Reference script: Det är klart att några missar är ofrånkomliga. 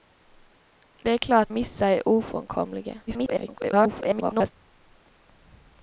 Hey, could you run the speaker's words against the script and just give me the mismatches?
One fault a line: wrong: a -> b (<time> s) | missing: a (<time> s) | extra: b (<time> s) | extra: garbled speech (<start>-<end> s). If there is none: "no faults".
missing: att några (1.5 s)
extra: garbled speech (3.1-4.5 s)